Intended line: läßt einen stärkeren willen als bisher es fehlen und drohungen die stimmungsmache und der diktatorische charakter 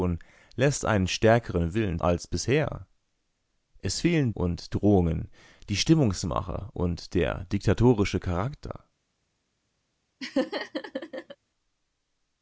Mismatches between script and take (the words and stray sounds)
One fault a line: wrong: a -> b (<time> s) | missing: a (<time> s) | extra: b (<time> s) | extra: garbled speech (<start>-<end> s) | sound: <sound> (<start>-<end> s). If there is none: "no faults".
sound: laugh (10.2-11.4 s)